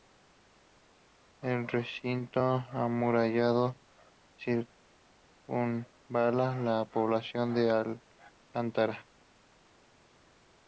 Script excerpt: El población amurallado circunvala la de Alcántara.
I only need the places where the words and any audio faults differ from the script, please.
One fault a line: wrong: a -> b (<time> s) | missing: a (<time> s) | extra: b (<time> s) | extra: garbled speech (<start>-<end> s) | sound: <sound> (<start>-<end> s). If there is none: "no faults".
wrong: población -> recinto (1.7 s)
extra: población (6.8 s)